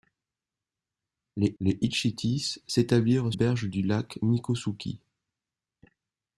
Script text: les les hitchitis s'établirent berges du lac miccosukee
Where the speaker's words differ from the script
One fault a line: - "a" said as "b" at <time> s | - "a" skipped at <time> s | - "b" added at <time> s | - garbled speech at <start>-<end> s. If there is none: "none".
none